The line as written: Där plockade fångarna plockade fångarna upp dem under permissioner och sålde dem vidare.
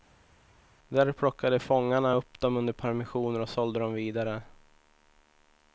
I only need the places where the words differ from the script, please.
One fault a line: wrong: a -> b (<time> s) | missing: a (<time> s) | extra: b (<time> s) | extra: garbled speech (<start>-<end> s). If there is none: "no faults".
missing: plockade fångarna (2.1 s)